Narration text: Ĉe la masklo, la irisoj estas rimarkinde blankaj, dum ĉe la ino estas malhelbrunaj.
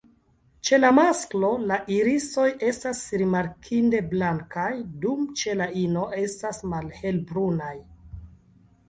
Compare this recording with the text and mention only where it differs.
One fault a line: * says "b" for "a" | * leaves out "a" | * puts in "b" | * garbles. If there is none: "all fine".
all fine